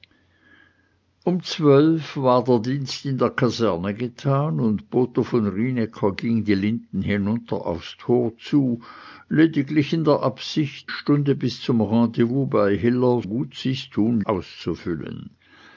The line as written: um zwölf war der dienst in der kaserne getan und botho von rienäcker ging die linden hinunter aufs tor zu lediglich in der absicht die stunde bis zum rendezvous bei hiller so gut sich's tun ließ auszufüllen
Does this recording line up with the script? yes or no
no